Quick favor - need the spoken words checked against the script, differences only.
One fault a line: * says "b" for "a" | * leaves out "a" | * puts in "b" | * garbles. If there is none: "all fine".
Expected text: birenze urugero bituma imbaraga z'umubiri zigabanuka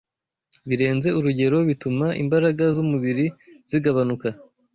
all fine